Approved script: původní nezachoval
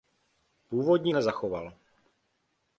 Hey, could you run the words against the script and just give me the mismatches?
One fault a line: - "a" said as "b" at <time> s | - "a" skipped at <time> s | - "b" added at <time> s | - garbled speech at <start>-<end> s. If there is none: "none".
none